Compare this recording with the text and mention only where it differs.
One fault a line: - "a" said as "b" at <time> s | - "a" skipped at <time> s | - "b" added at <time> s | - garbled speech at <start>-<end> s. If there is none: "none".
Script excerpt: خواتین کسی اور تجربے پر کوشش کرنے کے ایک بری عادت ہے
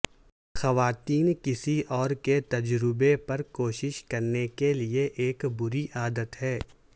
- "کے" added at 2.2 s
- "لئے" added at 4.7 s